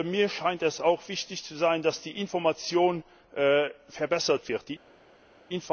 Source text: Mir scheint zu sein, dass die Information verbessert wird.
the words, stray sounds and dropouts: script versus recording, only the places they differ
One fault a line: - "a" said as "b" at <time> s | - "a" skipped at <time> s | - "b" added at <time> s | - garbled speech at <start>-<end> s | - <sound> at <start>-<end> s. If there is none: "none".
- "es auch wichtig" added at 0.6 s